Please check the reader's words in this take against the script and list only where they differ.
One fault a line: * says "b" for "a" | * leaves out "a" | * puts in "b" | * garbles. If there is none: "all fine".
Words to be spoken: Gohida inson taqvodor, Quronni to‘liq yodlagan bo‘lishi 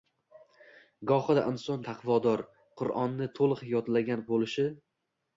all fine